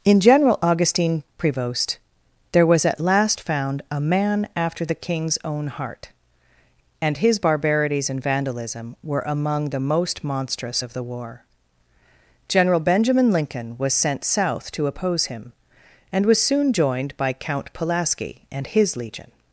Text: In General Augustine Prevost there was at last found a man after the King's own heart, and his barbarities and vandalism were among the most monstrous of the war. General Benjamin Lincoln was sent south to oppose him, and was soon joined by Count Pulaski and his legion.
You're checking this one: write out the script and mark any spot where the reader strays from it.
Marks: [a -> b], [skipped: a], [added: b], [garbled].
In General Augustine Prevost there was at last found a man after the King's own heart, and his barbarities and vandalism were among the most monstrous of the war. General Benjamin Lincoln was sent south to oppose him, and was soon joined by Count Pulaski and his legion.